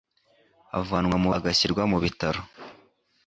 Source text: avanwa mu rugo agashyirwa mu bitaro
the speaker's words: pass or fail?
fail